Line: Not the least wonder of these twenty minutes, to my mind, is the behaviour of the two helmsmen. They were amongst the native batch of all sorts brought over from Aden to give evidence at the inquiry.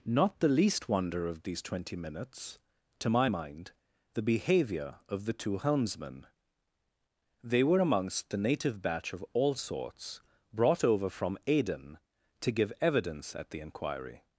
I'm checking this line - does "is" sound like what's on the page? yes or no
no